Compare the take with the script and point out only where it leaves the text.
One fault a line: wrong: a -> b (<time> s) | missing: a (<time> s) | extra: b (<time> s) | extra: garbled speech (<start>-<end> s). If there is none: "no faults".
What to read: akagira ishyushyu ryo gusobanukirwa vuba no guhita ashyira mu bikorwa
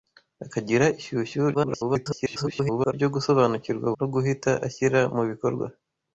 extra: garbled speech (1.5-2.9 s)
missing: vuba (3.9 s)